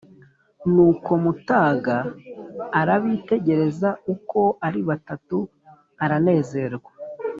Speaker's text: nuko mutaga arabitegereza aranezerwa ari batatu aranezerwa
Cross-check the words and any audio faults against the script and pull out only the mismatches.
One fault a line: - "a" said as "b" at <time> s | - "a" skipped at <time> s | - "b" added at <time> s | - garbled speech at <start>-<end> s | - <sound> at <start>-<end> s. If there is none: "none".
- "aranezerwa" said as "uko" at 4.1 s